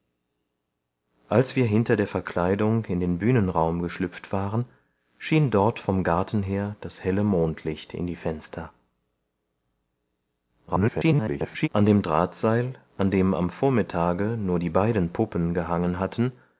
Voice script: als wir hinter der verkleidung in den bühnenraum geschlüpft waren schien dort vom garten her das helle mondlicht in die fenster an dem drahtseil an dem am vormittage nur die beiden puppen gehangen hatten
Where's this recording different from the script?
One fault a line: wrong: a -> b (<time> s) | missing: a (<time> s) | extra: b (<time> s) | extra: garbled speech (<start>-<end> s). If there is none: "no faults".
extra: garbled speech (10.7-11.7 s)